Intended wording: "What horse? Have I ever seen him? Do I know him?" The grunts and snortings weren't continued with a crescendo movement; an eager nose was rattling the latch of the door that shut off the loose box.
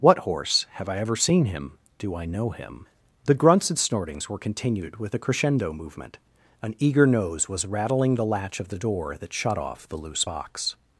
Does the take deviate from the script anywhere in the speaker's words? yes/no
yes